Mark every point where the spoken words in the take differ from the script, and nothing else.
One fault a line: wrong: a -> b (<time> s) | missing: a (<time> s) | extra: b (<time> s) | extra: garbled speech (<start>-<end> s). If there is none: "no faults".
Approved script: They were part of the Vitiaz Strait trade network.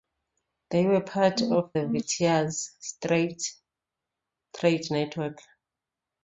no faults